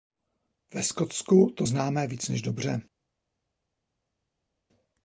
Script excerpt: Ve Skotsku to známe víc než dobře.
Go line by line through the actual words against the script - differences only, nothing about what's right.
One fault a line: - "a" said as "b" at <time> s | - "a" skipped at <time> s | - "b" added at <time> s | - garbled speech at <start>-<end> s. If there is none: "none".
none